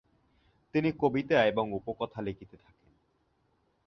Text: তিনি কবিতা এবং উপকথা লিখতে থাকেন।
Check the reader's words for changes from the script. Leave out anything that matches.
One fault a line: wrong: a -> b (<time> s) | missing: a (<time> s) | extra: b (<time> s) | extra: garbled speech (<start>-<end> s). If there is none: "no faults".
no faults